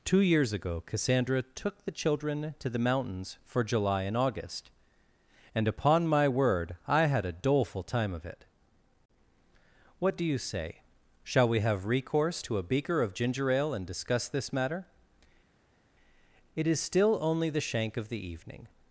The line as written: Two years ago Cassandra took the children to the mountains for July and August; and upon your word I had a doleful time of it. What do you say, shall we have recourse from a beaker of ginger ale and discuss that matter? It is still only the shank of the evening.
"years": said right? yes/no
yes